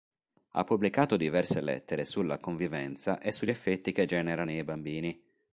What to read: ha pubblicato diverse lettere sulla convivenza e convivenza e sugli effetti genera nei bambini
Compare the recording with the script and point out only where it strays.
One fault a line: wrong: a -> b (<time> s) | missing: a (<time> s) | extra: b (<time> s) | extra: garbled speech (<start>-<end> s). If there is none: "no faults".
missing: convivenza e (3.3 s)
extra: che (3.9 s)